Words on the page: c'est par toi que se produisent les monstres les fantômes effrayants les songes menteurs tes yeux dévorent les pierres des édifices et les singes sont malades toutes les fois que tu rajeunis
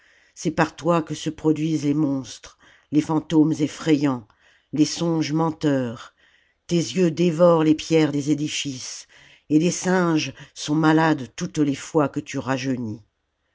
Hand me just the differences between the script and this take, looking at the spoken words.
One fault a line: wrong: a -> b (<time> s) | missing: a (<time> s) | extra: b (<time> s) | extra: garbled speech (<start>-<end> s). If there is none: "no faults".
no faults